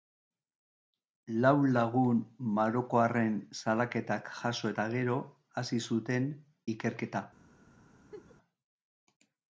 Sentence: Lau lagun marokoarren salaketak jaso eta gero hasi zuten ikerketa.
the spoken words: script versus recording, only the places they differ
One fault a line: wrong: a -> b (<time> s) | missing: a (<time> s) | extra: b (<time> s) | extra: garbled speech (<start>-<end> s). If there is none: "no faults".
no faults